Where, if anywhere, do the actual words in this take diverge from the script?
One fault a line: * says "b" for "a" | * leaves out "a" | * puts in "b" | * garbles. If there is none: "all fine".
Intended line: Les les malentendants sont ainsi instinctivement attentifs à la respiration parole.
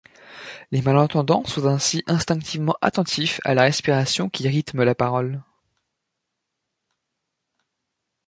* leaves out "les"
* puts in "qui rythme la"